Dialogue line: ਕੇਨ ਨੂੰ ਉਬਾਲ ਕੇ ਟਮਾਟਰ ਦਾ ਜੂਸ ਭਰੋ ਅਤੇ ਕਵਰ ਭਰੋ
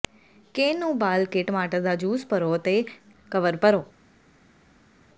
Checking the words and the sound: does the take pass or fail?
pass